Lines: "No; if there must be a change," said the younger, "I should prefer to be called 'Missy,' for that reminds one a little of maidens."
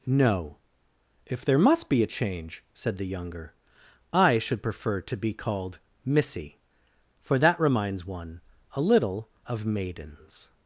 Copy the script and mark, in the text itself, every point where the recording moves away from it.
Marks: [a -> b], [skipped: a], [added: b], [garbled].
"No; if there must be a change," said the younger, "I should prefer to be called 'Missy,' for that reminds one a little of maidens."